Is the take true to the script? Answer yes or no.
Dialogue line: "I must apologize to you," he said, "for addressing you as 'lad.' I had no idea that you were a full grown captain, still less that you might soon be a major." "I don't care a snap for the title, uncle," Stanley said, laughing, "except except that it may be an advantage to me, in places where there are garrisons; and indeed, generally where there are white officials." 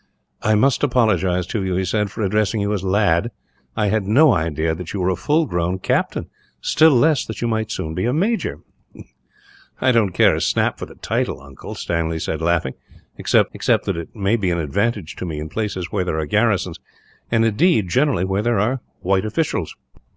yes